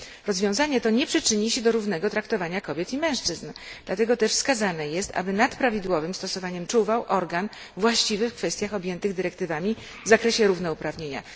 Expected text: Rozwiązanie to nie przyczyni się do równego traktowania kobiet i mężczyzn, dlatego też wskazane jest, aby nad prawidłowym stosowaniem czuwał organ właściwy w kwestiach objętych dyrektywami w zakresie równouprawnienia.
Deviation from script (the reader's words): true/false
false